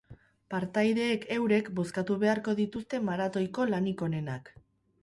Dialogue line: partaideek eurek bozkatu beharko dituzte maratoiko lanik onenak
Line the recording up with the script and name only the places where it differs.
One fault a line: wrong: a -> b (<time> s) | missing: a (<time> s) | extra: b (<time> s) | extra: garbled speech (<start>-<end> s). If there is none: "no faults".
no faults